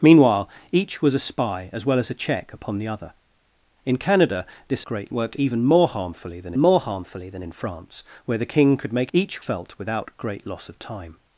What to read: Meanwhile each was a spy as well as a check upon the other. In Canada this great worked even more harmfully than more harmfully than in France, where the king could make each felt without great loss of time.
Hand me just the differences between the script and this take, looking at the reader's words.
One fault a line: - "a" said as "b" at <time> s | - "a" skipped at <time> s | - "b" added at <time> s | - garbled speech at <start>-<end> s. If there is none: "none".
none